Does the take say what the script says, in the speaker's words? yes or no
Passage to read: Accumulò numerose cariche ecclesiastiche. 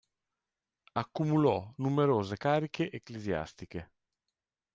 yes